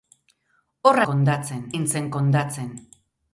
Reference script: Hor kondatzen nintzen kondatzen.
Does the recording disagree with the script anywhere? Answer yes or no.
no